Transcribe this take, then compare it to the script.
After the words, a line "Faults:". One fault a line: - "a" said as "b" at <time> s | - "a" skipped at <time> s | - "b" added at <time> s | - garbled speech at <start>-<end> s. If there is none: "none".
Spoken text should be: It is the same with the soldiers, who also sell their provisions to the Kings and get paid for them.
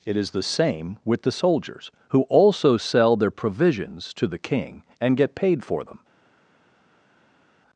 It is the same with the soldiers, who also sell their provisions to the King and get paid for them.
Faults:
- "Kings" said as "King" at 4.4 s